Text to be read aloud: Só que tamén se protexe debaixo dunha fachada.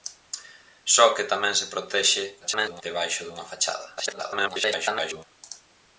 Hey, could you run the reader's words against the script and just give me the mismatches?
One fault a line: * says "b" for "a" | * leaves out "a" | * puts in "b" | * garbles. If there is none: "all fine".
* garbles
* garbles